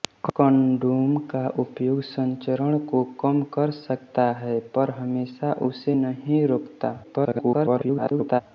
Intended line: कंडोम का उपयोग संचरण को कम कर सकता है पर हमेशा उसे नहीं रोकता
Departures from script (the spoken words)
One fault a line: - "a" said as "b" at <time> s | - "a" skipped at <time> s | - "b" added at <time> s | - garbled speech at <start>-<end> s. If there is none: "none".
- garbled speech at 7.0-8.4 s